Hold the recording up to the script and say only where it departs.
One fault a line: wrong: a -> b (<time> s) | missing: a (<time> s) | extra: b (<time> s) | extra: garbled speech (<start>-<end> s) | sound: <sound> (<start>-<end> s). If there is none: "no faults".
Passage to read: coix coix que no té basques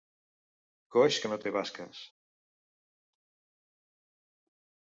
missing: coix (1.2 s)